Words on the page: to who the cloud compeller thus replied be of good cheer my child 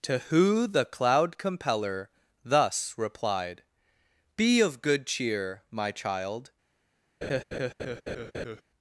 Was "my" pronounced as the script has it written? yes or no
yes